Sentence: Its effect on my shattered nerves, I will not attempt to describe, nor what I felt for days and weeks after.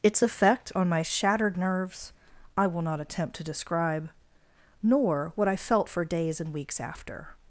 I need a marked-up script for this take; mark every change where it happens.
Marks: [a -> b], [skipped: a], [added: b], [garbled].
Its effect on my shattered nerves, I will not attempt to describe, nor what I felt for days and weeks after.